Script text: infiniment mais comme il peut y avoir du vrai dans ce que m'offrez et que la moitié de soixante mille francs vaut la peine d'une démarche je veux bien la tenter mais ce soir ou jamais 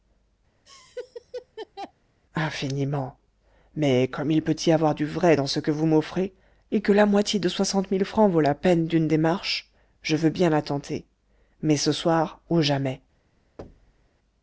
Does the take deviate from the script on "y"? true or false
false